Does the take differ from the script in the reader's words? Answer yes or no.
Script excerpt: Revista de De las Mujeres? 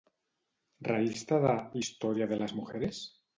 yes